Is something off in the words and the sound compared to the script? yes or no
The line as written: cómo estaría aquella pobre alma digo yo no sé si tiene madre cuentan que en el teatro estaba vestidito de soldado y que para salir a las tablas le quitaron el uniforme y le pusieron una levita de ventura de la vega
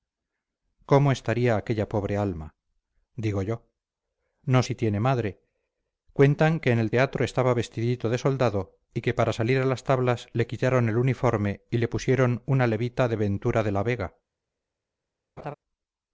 yes